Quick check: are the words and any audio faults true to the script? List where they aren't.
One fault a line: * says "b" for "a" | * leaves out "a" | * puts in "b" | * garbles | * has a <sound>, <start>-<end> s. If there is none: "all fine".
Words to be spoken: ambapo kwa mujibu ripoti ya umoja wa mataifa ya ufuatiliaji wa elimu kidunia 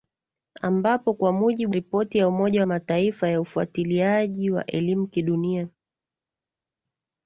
all fine